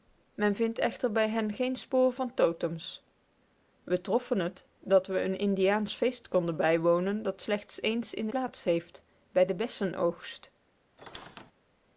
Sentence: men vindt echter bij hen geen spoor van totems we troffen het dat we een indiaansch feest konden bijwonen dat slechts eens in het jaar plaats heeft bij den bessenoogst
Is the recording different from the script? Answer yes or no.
yes